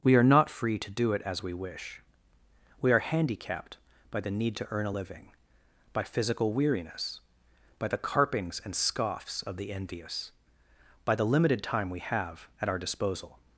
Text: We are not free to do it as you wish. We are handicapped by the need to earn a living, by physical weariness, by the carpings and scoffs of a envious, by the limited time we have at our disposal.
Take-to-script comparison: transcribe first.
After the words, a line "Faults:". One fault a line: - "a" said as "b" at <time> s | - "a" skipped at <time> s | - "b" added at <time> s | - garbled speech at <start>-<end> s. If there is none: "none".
We are not free to do it as we wish. We are handicapped by the need to earn a living, by physical weariness, by the carpings and scoffs of the envious, by the limited time we have at our disposal.
Faults:
- "you" said as "we" at 1.4 s
- "a" said as "the" at 9.6 s